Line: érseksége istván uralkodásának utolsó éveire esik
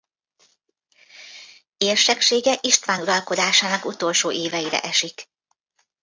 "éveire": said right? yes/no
yes